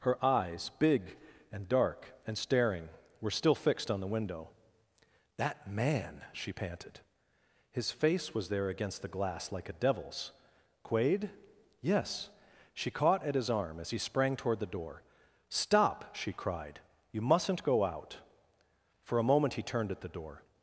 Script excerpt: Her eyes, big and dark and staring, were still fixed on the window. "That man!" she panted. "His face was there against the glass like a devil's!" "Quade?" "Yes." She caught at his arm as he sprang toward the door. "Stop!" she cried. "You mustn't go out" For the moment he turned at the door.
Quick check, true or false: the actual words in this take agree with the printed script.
false